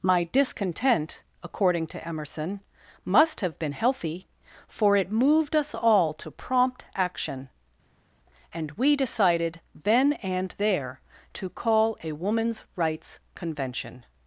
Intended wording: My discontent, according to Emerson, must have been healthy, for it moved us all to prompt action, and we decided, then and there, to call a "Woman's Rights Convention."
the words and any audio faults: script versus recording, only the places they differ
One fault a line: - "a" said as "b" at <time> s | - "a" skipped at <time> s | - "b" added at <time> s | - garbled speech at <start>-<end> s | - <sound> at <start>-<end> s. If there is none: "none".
none